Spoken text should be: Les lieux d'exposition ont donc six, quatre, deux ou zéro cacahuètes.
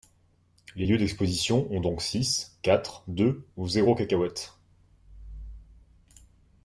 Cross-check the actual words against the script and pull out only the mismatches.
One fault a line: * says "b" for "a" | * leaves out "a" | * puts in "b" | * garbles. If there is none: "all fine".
all fine